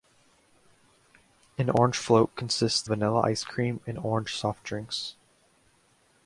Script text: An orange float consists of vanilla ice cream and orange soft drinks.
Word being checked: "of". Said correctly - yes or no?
no